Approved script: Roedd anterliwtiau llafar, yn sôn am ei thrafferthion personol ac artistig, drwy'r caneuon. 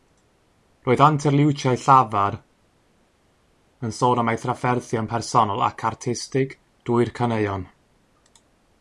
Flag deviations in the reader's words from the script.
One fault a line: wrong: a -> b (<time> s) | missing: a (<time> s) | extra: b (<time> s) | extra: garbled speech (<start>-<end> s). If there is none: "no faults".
no faults